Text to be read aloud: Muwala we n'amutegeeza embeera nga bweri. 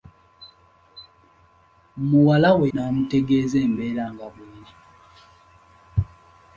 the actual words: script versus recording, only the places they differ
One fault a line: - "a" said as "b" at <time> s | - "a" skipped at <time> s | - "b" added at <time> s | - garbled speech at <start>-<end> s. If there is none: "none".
none